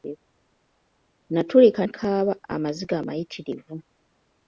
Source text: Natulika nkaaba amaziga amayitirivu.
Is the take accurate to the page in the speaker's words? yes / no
yes